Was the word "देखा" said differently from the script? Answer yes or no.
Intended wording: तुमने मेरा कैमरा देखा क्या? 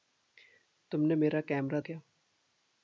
yes